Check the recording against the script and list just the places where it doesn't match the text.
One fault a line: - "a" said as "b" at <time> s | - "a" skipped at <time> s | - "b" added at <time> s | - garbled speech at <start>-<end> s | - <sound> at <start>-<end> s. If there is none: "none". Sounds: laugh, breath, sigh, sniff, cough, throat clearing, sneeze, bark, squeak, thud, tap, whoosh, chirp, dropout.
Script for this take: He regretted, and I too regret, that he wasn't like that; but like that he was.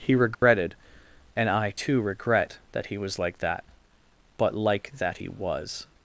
- dropout at 0.3-0.4 s
- "wasn't" said as "was" at 3.0 s